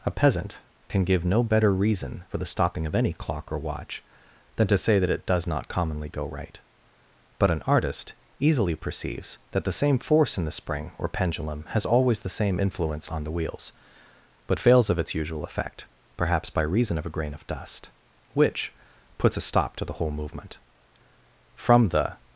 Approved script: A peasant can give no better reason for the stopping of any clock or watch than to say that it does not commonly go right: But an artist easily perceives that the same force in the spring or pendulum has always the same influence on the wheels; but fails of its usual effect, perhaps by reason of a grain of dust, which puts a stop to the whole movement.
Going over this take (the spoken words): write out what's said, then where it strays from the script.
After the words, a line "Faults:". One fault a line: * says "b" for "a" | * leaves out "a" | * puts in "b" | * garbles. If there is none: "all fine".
A peasant can give no better reason for the stopping of any clock or watch than to say that it does not commonly go right: But an artist easily perceives that the same force in the spring or pendulum has always the same influence on the wheels; but fails of its usual effect, perhaps by reason of a grain of dust, which puts a stop to the whole movement. From the
Faults:
* puts in "From the"